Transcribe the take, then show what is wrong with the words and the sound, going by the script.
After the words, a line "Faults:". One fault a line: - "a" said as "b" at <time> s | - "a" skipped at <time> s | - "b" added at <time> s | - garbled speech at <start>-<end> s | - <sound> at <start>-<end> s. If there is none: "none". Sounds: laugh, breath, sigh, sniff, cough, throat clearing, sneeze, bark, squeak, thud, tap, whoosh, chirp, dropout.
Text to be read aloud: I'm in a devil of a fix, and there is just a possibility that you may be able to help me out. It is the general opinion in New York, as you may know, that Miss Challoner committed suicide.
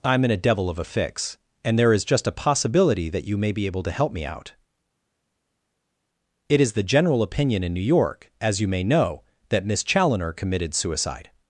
I'm in a devil of a fix, and there is just a possibility that you may be able to help me out. It is the general opinion in New York, as you may know, that Miss Challoner committed suicide.
Faults:
none